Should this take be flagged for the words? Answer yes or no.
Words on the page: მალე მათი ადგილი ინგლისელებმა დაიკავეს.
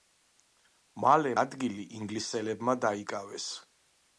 yes